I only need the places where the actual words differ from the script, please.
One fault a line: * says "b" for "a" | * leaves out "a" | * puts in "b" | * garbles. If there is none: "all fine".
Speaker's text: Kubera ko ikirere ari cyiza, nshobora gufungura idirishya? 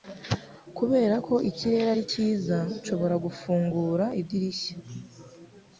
all fine